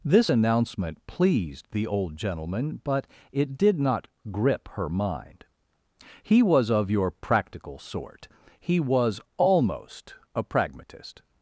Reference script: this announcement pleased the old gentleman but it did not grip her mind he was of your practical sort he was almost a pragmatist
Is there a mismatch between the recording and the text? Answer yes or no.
no